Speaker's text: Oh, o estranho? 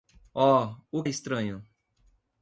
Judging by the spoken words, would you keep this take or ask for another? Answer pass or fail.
pass